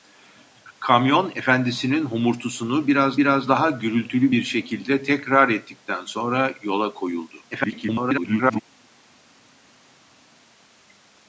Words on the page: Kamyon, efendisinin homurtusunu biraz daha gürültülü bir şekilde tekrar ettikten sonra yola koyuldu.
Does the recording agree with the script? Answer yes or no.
no